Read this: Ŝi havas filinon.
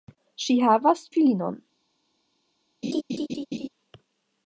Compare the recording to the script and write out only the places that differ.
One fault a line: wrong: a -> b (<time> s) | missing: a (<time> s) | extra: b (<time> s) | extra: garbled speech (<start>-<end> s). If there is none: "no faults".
no faults